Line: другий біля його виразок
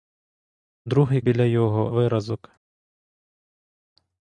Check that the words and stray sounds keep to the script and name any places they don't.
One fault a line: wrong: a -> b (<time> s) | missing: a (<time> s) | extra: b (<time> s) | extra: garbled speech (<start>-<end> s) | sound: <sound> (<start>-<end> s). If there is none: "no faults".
no faults